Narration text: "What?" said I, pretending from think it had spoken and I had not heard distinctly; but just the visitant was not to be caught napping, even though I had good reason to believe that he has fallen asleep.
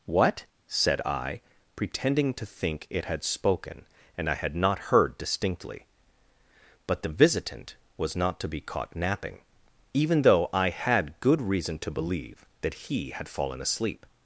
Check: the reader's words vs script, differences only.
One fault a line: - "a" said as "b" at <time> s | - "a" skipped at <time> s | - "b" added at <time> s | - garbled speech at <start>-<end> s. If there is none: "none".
- "from" said as "to" at 2.3 s
- "just" skipped at 7.0 s
- "has" said as "had" at 13.1 s